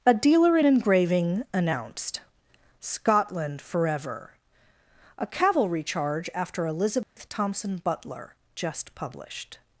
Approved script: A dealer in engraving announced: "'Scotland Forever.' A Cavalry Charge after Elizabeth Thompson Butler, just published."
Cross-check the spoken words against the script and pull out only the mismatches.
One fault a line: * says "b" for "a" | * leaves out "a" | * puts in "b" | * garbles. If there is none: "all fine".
all fine